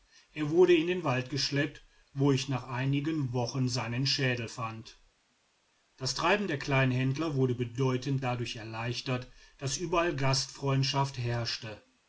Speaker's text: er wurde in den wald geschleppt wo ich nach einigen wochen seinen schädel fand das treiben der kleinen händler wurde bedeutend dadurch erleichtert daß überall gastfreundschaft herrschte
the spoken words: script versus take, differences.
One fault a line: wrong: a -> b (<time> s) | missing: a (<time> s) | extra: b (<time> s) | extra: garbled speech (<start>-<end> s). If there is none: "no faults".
no faults